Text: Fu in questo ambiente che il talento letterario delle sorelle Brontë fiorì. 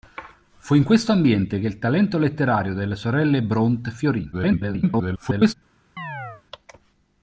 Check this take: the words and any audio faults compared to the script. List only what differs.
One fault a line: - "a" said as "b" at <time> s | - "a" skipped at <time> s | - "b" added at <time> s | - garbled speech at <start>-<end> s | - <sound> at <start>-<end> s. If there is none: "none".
- garbled speech at 4.3-5.5 s
- chirp at 6.0-6.4 s